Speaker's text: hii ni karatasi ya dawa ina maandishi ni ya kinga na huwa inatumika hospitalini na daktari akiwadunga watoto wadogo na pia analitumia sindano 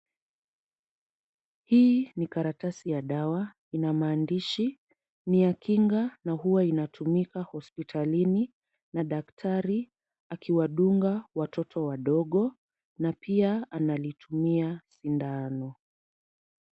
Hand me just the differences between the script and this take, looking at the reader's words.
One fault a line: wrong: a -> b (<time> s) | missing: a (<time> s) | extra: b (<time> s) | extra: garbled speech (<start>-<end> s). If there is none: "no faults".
no faults